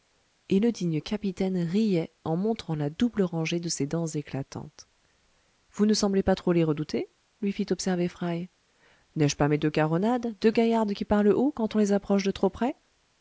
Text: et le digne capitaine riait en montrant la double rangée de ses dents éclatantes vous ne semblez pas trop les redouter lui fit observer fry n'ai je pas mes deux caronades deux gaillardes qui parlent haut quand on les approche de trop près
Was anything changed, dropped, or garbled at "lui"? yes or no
no